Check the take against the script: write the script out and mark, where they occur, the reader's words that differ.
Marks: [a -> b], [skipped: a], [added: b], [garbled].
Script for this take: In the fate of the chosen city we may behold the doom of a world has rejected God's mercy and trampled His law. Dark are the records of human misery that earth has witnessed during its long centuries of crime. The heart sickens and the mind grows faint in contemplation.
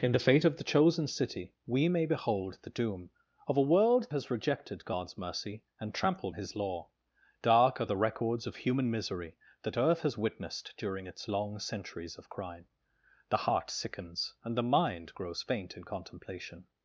In the fate of the chosen city we may behold the doom of a world has rejected God's mercy and trampled His law. Dark are the records of human misery that earth has witnessed during its long centuries of crime. The heart sickens and the mind grows faint in contemplation.